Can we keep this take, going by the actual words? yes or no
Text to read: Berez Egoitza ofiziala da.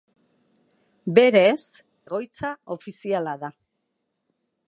yes